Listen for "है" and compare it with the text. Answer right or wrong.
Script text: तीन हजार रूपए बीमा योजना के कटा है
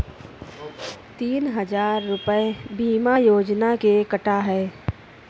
right